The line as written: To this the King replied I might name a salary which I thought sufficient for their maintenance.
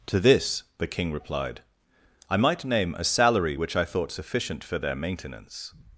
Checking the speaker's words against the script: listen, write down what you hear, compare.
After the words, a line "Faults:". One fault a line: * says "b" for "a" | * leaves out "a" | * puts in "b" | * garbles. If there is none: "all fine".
To this the King replied I might name a salary which I thought sufficient for their maintenance.
Faults:
all fine